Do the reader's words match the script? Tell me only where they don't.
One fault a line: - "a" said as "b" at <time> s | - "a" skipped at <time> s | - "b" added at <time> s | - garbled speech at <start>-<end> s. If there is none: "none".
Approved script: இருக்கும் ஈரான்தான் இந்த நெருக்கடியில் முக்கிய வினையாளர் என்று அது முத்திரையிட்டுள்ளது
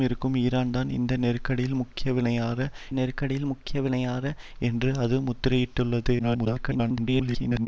- "நெருக்கடியில் முக்கிய வினையாளர்" added at 2.9 s
- garbled speech at 6.2-7.7 s